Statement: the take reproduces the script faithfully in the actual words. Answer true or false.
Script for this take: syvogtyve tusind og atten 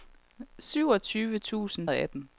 true